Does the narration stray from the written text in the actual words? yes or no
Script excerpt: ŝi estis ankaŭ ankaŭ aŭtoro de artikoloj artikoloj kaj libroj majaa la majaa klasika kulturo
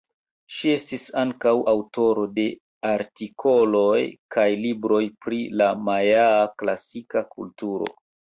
yes